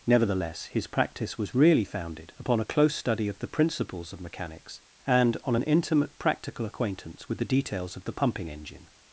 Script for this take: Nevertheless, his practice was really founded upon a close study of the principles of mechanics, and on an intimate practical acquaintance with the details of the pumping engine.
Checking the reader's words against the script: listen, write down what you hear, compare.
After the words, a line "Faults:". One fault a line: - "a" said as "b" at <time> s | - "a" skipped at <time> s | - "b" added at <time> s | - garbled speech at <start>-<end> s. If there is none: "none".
Nevertheless, his practice was really founded upon a close study of the principles of mechanics, and on an intimate practical acquaintance with the details of the pumping engine.
Faults:
none